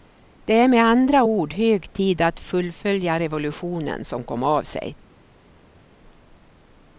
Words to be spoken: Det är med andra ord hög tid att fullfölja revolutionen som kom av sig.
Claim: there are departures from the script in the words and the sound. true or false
false